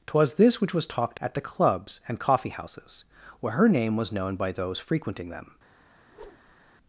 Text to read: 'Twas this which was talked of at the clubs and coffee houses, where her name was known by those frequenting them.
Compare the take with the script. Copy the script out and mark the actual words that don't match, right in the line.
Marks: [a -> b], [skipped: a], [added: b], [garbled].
'Twas this which was talked [skipped: of] at the clubs and coffee houses, where her name was known by those frequenting them.